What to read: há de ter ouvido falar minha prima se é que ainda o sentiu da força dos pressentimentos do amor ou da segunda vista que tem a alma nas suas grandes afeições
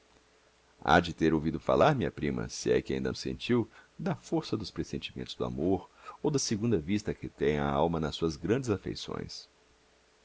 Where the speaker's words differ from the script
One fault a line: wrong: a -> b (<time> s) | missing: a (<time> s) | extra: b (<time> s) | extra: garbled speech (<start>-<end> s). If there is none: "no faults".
no faults